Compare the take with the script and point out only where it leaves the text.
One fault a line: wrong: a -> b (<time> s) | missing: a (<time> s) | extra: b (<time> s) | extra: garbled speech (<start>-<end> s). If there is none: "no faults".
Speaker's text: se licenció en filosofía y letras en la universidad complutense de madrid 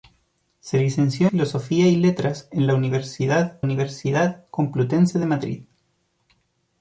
missing: en (1.3 s)
extra: universidad (3.6 s)